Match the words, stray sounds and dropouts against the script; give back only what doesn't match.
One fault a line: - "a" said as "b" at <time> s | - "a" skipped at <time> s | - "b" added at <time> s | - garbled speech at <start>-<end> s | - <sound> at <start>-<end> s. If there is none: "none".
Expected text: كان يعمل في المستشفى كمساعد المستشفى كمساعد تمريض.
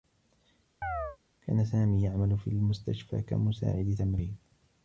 - chirp at 0.8-1.2 s
- "سامي" added at 1.6 s
- "المستشفى كمساعد" skipped at 3.9 s